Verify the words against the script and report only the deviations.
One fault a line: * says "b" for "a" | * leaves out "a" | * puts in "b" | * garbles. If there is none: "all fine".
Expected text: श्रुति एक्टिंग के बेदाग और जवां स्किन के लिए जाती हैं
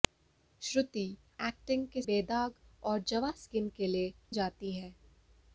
all fine